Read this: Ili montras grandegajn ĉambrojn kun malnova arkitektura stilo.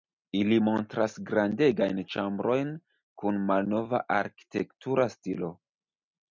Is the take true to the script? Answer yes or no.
yes